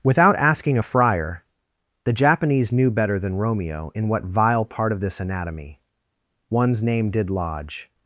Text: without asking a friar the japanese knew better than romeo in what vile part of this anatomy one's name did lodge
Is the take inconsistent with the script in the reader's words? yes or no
no